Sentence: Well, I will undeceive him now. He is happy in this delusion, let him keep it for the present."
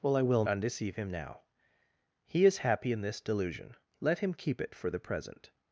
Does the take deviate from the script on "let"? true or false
false